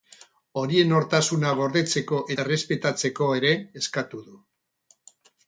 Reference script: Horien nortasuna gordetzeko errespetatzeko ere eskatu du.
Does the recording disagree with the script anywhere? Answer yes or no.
no